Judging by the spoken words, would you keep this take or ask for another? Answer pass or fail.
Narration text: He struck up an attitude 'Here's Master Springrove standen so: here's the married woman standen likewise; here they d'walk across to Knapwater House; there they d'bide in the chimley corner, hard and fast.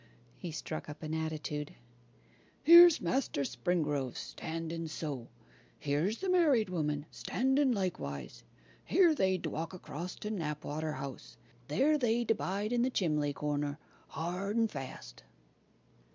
pass